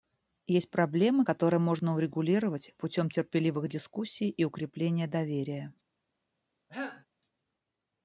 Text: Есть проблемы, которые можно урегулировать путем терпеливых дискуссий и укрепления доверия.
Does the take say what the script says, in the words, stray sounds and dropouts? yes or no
no